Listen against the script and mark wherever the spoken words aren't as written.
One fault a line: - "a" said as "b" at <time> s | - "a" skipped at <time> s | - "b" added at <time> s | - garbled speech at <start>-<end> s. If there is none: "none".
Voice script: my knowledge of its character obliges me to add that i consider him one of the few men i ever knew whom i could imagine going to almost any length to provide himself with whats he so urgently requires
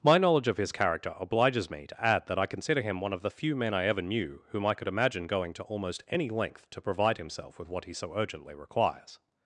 - "its" said as "his" at 0.6 s
- "whats" said as "what" at 7.7 s